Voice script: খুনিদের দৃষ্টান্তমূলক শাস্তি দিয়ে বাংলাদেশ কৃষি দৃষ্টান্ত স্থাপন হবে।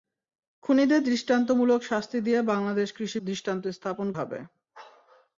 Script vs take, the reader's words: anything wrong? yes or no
no